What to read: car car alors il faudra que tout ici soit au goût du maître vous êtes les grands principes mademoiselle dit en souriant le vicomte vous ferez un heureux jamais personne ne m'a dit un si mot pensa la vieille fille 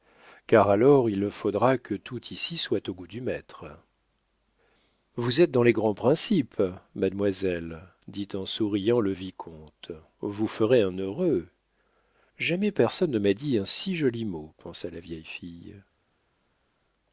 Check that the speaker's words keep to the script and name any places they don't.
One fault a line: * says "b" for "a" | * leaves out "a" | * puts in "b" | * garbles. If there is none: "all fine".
* leaves out "car"
* puts in "dans"
* puts in "joli"